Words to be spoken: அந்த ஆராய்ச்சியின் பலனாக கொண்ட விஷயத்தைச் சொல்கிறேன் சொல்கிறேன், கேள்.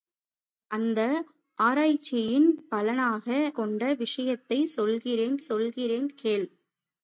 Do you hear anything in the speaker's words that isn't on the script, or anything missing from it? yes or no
no